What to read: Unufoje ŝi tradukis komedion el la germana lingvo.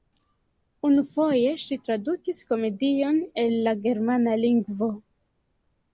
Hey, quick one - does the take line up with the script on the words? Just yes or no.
yes